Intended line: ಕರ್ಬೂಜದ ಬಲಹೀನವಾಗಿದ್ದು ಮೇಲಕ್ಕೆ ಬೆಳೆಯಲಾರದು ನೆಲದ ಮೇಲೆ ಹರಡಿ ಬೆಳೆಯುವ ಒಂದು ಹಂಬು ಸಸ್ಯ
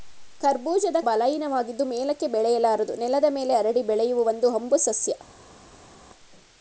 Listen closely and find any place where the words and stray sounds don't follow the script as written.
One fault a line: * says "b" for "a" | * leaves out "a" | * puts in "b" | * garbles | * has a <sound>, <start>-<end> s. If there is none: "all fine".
all fine